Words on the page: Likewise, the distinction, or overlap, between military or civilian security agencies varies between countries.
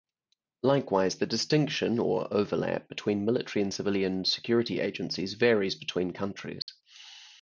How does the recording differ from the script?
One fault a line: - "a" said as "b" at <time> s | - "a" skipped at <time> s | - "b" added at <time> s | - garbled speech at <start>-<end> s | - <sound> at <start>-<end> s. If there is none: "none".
- "or" said as "and" at 3.6 s
- dropout at 6.6-6.7 s